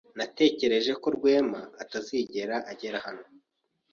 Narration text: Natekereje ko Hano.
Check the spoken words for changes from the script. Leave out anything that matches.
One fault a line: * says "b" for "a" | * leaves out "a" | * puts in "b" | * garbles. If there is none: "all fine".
* puts in "Rwema atazigera agera"